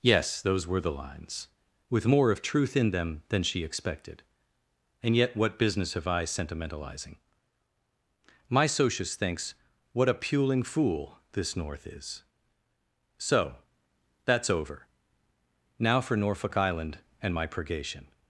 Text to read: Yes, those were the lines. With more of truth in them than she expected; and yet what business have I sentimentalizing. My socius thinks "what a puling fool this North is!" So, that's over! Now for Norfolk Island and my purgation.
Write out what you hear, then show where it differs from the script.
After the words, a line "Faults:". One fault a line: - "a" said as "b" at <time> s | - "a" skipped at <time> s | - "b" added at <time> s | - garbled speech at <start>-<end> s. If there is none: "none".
Yes, those were the lines. With more of truth in them than she expected; and yet what business have I sentimentalizing. My socius thinks "what a puling fool this North is!" So, that's over! Now for Norfolk Island and my purgation.
Faults:
none